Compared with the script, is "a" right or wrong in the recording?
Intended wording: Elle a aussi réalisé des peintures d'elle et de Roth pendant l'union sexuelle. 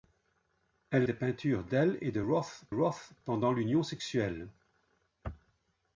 wrong